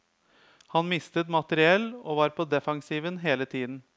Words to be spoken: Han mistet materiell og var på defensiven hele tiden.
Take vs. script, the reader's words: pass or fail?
pass